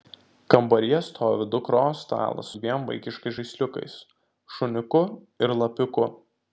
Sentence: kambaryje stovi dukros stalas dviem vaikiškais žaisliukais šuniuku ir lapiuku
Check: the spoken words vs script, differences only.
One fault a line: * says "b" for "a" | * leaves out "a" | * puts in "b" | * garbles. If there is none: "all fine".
all fine